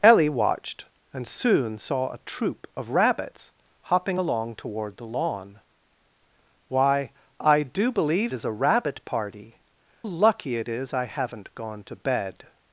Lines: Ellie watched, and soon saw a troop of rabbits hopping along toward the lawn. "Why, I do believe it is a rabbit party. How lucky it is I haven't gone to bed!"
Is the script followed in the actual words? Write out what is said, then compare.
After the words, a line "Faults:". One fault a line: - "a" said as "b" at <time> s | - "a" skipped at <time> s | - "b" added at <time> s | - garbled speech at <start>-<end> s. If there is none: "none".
Ellie watched, and soon saw a troop of rabbits hopping along toward the lawn. "Why, I do believe is a rabbit party. Lucky it is I haven't gone to bed!"
Faults:
- "it" skipped at 8.3 s
- "How" skipped at 9.6 s